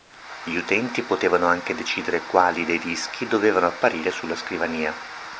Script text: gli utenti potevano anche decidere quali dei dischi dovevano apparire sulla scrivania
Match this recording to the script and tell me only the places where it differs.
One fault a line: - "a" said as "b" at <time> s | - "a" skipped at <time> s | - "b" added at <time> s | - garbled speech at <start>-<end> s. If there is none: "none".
none